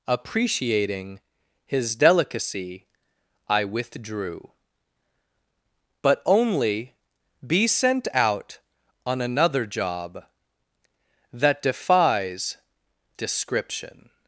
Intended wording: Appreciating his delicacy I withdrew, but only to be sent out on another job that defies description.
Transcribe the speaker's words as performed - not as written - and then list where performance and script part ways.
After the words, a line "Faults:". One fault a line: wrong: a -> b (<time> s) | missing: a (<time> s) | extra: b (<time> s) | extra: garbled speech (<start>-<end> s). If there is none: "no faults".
Appreciating his delicacy I withdrew, but only be sent out on another job that defies description.
Faults:
missing: to (7.0 s)